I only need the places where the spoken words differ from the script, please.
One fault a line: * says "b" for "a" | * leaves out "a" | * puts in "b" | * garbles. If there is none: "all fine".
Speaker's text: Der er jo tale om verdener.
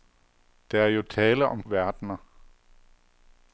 all fine